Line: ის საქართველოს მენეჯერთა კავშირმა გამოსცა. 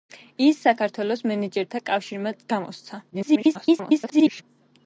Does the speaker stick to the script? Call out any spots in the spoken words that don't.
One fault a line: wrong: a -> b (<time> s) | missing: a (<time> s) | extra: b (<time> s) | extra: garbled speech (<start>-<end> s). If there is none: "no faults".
extra: garbled speech (3.1-4.4 s)